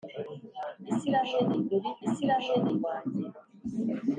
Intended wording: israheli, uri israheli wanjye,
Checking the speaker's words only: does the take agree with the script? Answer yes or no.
yes